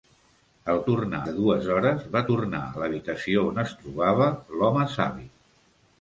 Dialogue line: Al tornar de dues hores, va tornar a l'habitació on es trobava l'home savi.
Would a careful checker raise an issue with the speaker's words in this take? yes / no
no